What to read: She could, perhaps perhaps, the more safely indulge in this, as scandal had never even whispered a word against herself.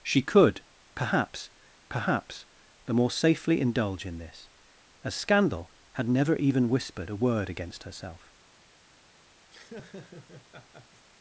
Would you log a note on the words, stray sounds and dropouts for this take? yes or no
yes